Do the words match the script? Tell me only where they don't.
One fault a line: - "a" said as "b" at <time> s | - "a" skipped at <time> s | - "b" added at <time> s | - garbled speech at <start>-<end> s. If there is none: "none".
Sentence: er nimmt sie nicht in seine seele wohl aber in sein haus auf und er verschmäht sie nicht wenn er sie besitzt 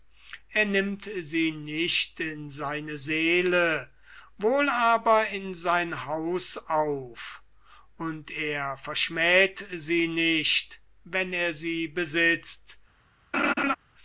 none